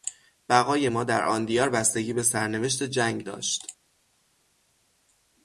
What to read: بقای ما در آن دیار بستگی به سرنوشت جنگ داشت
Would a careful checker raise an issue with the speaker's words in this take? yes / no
no